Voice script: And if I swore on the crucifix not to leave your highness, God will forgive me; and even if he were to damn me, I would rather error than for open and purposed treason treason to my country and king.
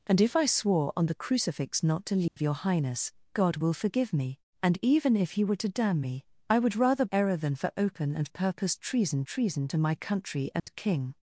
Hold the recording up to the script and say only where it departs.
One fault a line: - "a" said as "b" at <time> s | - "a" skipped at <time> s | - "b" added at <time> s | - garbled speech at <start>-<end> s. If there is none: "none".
none